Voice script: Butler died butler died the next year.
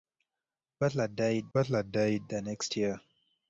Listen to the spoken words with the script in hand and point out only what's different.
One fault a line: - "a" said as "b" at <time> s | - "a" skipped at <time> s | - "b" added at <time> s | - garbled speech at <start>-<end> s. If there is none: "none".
none